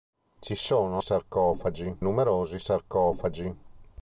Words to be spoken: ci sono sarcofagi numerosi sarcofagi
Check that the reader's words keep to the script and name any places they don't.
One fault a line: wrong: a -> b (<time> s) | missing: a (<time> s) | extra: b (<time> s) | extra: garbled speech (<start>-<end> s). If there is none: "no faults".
no faults